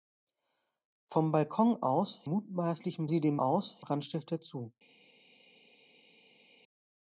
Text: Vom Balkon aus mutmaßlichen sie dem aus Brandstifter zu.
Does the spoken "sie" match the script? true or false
true